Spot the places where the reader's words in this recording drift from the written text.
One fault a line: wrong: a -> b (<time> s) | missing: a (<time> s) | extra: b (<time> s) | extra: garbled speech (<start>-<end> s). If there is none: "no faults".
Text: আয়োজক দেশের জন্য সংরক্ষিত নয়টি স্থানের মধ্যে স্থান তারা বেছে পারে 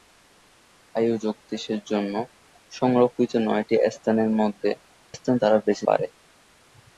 no faults